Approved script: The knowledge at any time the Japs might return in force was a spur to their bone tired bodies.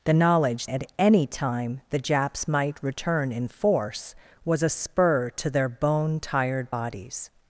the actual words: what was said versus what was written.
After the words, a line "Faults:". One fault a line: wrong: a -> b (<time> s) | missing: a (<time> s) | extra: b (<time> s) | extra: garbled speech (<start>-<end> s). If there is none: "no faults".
The knowledge at any time the Japs might return in force was a spur to their bone tired bodies.
Faults:
no faults